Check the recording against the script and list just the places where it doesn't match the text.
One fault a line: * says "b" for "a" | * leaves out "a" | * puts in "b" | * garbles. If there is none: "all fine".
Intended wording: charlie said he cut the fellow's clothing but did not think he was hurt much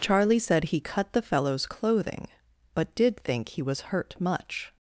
* leaves out "not"